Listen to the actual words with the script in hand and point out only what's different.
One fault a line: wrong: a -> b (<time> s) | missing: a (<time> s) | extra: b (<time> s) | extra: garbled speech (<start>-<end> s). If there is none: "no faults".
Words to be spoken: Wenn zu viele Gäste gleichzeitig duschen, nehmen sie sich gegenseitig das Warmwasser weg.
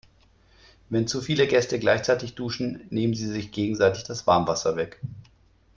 no faults